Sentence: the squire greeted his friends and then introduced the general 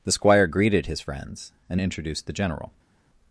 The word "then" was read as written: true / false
false